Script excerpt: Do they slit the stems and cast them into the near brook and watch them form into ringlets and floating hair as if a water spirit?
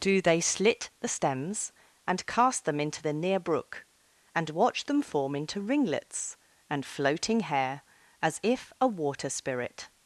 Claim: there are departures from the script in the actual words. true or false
false